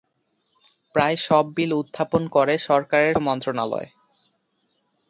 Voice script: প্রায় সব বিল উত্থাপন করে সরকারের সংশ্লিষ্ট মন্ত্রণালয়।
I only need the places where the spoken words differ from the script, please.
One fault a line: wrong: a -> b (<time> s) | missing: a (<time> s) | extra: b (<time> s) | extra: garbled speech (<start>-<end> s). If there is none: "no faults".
missing: সংশ্লিষ্ট (3.1 s)